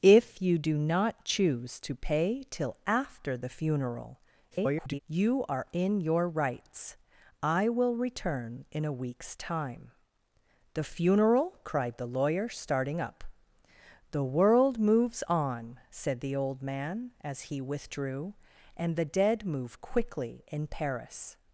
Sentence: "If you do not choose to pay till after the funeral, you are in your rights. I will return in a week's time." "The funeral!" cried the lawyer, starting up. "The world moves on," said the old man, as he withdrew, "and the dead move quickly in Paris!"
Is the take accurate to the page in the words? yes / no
no